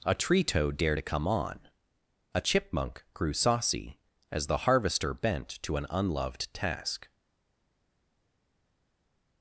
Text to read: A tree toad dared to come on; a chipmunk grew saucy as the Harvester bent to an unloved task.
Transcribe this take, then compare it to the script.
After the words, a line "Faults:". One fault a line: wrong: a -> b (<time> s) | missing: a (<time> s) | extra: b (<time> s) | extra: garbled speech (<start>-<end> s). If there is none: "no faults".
A tree toad dared to come on; a chipmunk grew saucy as the Harvester bent to an unloved task.
Faults:
no faults